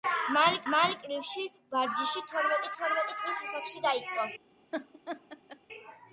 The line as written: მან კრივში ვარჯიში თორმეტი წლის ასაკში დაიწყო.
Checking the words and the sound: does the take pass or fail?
fail